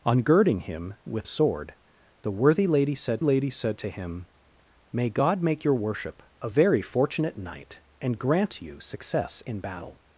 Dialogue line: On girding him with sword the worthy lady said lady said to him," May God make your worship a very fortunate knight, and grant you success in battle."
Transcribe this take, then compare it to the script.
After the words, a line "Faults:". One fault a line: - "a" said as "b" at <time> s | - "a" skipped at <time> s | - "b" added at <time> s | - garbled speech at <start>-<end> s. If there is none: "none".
On girding him with sword the worthy lady said lady said to him," May God make your worship a very fortunate knight, and grant you success in battle."
Faults:
none